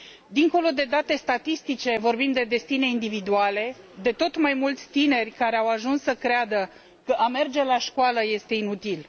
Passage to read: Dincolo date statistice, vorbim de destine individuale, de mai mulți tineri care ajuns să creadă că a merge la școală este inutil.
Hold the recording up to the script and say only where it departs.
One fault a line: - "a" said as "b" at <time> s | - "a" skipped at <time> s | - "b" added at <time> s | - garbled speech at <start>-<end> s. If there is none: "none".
- "de" added at 0.7 s
- "tot" added at 4.1 s
- "au" added at 5.5 s